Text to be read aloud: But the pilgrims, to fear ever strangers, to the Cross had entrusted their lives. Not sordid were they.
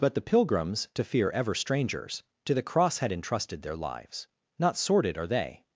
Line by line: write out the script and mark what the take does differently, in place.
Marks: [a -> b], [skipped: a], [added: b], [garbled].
But the pilgrims, to fear ever strangers, to the Cross had entrusted their lives. Not sordid [were -> are] they.